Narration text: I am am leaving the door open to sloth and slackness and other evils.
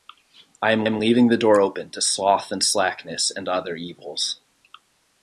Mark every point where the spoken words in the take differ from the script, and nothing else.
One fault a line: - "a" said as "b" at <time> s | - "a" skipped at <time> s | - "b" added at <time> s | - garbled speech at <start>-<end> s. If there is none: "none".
none